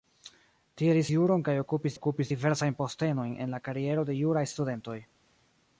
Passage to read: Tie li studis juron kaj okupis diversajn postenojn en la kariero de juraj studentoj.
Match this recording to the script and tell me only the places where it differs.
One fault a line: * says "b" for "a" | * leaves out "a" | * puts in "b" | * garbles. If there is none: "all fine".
* leaves out "studis"
* puts in "okupis"